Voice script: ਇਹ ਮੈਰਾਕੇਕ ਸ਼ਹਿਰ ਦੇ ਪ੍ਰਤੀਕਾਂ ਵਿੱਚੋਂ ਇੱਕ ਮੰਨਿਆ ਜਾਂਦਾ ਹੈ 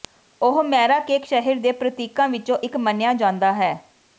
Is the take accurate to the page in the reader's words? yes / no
no